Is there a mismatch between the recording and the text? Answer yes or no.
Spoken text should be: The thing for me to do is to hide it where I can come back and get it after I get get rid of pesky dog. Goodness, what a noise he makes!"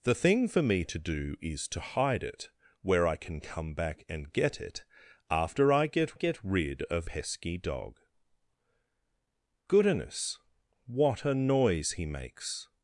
no